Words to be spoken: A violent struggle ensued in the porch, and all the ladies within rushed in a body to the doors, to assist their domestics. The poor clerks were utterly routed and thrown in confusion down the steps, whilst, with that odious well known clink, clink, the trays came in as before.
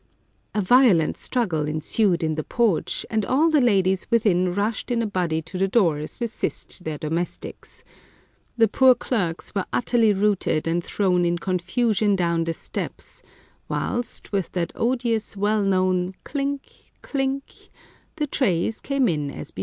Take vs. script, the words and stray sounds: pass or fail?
fail